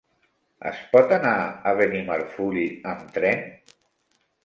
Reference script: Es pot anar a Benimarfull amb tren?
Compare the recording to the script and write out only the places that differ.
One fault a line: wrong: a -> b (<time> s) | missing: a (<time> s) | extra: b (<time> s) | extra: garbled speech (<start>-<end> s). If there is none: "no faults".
no faults